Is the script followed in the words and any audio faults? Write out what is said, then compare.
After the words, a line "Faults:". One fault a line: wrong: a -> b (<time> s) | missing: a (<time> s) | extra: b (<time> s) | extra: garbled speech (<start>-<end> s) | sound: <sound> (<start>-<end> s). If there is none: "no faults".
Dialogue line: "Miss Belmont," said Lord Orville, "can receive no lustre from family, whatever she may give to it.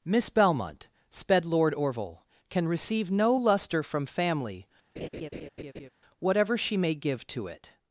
"Miss Belmont," sped Lord Orville, "can receive no lustre from family, whatever she may give to it.
Faults:
wrong: said -> sped (1.1 s)
sound: laugh (5.0-5.9 s)